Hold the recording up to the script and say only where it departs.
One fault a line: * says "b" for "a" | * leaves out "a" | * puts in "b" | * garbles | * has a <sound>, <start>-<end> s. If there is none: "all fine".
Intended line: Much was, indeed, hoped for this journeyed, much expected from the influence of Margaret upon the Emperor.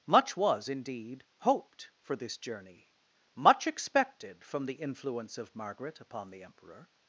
* says "journey" for "journeyed"